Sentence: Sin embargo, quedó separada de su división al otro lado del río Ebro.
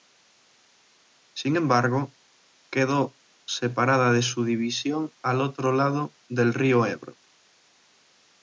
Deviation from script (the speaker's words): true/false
false